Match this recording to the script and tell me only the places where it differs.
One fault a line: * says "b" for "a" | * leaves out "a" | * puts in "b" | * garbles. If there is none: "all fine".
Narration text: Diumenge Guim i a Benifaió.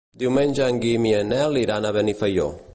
* puts in "en"
* puts in "en Nel iran"